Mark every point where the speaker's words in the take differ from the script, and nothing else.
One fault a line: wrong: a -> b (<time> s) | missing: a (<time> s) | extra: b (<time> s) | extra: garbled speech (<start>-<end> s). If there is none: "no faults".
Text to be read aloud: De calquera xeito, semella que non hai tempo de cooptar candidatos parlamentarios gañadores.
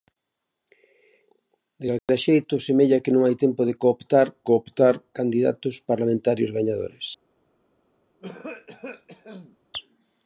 extra: cooptar (4.5 s)